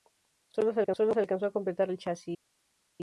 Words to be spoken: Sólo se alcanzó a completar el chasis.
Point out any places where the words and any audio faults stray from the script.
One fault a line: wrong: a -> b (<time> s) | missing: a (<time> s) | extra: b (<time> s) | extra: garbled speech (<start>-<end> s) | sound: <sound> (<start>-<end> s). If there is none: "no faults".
no faults